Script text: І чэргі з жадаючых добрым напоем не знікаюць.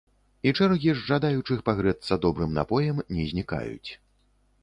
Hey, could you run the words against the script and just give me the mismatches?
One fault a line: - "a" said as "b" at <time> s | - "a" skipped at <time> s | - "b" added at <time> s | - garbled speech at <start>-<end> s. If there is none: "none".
- "пагрэцца" added at 1.7 s